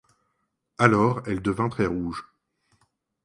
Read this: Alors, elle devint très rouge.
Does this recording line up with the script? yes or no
yes